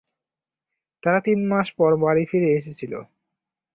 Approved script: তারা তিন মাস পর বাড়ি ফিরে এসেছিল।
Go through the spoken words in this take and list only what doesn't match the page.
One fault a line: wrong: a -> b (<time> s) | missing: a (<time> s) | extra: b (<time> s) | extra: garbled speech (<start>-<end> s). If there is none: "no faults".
no faults